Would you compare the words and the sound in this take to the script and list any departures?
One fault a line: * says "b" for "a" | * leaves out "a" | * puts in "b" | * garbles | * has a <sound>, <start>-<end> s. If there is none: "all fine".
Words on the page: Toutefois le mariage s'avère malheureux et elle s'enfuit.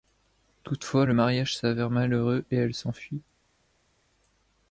all fine